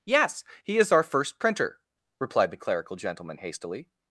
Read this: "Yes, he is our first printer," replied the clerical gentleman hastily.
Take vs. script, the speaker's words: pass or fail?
pass